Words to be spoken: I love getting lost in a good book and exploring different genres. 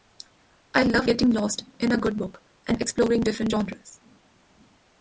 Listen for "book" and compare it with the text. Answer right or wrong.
right